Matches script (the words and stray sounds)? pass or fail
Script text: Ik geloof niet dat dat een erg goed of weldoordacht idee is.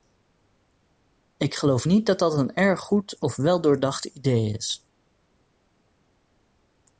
pass